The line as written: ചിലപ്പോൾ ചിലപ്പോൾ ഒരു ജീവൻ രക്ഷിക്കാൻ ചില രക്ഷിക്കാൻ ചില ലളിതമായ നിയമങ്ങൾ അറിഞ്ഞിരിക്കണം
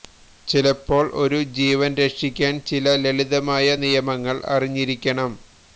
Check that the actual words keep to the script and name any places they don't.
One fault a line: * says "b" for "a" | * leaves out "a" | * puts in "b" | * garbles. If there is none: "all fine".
* leaves out "ചിലപ്പോൾ"
* leaves out "രക്ഷിക്കാൻ ചില"